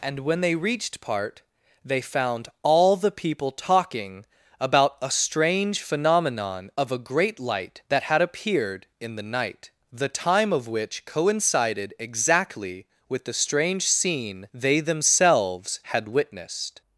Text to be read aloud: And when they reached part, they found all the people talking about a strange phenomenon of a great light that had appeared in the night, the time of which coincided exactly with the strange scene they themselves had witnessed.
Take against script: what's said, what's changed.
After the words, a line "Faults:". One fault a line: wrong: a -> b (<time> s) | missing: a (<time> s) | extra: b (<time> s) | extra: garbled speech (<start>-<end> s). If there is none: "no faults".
And when they reached part, they found all the people talking about a strange phenomenon of a great light that had appeared in the night, the time of which coincided exactly with the strange scene they themselves had witnessed.
Faults:
no faults